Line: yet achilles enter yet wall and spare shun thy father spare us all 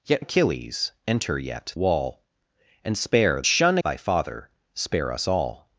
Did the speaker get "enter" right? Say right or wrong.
right